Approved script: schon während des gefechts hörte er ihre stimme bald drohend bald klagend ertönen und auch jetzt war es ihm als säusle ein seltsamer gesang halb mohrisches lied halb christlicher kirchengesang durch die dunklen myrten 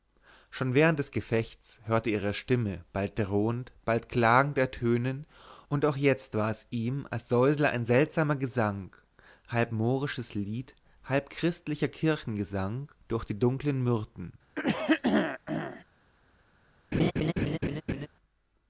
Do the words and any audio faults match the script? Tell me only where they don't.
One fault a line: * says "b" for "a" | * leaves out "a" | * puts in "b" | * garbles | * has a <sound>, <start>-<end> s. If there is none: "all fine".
* has a throat clearing, 14.6-15.8 s
* has a laugh, 16.9-18.1 s